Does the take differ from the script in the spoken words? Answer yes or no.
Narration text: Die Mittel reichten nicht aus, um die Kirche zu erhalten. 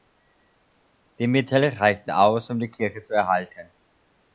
yes